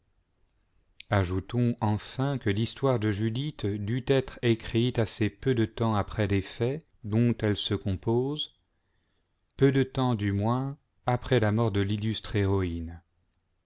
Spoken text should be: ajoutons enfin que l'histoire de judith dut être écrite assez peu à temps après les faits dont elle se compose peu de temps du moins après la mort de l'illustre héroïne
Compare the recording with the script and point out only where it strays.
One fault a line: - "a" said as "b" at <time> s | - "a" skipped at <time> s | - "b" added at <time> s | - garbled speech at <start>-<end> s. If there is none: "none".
- "à" said as "de" at 5.5 s